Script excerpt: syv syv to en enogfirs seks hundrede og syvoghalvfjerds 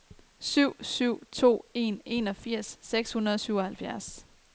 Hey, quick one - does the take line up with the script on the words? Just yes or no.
yes